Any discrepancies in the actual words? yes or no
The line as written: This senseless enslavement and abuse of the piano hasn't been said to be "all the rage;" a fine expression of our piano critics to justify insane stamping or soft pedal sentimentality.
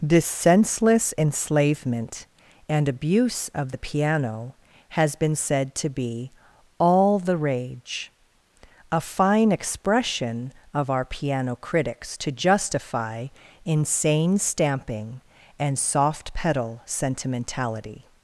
yes